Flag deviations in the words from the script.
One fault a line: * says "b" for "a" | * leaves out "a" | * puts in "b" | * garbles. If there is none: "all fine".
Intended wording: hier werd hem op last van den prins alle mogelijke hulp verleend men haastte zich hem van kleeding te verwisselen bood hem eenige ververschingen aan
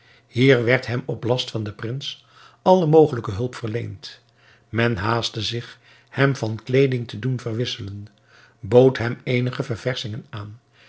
* puts in "doen"